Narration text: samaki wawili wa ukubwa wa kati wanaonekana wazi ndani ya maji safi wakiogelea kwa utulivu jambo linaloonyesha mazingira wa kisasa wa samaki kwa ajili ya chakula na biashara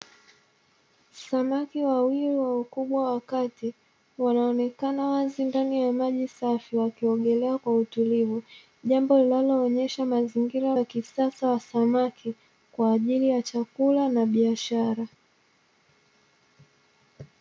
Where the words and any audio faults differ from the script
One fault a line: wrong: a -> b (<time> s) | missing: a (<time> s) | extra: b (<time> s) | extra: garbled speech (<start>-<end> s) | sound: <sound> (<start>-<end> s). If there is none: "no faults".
no faults